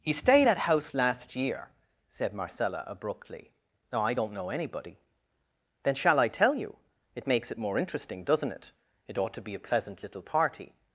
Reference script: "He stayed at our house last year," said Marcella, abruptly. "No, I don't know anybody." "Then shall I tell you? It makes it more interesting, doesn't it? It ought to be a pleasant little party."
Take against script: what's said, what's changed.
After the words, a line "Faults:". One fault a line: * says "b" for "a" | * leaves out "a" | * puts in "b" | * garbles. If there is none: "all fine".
"He stayed at house last year," said Marcella, abruptly. "No, I don't know anybody." "Then shall I tell you? It makes it more interesting, doesn't it? It ought to be a pleasant little party."
Faults:
* leaves out "our"